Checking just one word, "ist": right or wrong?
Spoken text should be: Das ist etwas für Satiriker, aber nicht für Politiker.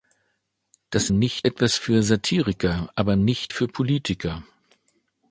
wrong